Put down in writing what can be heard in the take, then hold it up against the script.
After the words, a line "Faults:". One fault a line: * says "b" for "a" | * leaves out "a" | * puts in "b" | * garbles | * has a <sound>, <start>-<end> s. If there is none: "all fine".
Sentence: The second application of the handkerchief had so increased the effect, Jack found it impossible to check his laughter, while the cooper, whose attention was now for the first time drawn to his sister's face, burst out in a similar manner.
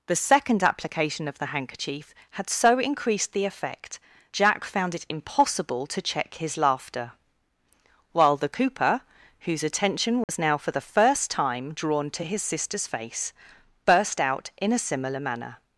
The second application of the handkerchief had so increased the effect, Jack found it impossible to check his laughter, while the cooper, whose attention was now for the first time drawn to his sister's face, burst out in a similar manner.
Faults:
* has a dropout, 10.2-10.3 s